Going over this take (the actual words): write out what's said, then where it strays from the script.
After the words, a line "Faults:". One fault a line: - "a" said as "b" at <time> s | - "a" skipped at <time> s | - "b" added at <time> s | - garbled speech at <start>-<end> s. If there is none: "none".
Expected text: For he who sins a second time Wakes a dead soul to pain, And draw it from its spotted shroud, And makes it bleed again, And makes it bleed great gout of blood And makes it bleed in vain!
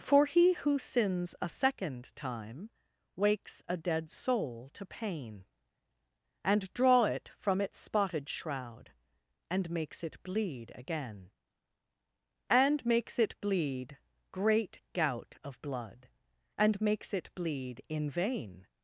For he who sins a second time Wakes a dead soul to pain, And draw it from its spotted shroud, And makes it bleed again, And makes it bleed great gout of blood And makes it bleed in vain!
Faults:
none